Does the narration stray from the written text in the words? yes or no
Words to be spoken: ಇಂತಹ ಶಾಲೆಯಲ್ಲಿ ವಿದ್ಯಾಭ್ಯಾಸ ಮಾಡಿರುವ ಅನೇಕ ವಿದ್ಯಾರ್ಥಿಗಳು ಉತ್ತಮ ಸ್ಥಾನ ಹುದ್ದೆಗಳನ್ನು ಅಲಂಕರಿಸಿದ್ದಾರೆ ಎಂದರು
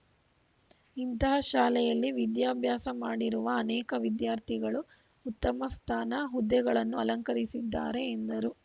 no